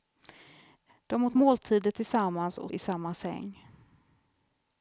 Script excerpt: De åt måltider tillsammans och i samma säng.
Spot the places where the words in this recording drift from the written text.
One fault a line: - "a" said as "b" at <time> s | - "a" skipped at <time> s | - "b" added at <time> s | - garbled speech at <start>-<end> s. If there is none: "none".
none